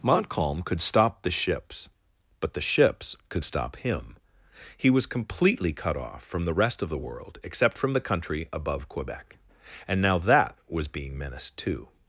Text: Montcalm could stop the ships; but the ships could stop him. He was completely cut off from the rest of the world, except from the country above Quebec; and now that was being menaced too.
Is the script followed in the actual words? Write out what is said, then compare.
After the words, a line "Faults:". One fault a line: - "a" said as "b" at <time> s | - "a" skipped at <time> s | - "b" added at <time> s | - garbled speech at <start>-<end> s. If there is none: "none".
Montcalm could stop the ships; but the ships could stop him. He was completely cut off from the rest of the world, except from the country above Quebec; and now that was being menaced too.
Faults:
none